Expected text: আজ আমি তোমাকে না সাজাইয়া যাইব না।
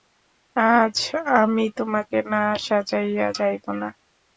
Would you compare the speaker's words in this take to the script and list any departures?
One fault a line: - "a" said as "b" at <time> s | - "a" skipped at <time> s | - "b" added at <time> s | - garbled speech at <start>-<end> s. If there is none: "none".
none